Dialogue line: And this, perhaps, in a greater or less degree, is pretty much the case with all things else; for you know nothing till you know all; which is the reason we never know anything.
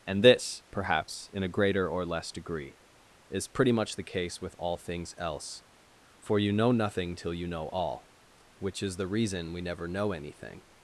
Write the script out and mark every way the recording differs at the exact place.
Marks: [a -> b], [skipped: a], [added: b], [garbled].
And this, perhaps, in a greater or less degree, is pretty much the case with all things else; for you know nothing till you know all; which is the reason we never know anything.